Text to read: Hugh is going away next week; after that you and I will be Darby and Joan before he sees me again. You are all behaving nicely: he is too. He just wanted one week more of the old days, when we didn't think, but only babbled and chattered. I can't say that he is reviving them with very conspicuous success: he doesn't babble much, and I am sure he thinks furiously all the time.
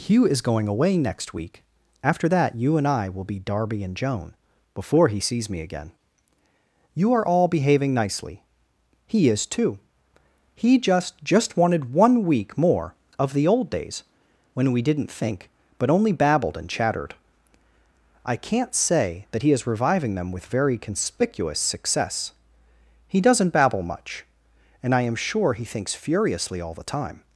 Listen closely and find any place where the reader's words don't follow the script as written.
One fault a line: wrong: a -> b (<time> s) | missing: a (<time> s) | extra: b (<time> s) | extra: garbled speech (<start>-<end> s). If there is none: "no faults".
extra: just (11.2 s)